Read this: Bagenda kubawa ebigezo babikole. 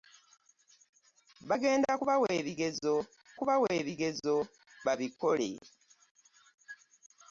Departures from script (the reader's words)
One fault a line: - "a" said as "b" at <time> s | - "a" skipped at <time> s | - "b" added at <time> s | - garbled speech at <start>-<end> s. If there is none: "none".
- "kubawa ebigezo" added at 3.4 s